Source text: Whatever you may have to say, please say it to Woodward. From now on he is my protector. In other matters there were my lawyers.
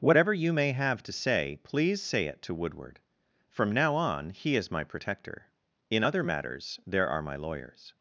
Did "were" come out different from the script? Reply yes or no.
yes